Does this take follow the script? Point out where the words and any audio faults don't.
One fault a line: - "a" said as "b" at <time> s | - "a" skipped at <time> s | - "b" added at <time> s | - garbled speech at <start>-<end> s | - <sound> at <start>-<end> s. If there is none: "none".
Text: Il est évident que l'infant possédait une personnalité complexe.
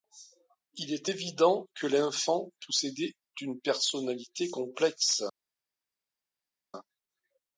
none